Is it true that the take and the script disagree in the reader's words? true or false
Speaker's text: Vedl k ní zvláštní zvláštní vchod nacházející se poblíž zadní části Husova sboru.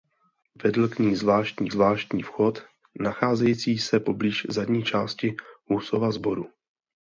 false